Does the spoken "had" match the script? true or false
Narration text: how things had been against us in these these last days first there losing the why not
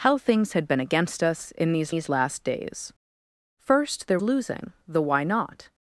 true